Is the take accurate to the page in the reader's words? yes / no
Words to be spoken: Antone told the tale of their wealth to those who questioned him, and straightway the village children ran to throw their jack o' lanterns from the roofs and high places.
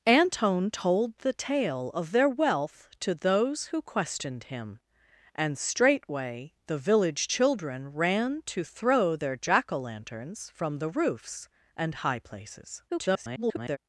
no